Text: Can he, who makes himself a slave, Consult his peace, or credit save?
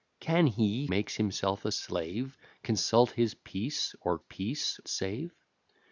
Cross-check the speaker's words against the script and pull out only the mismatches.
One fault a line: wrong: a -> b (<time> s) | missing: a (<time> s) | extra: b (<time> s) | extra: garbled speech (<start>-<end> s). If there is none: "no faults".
missing: who (0.9 s)
wrong: credit -> peace (4.2 s)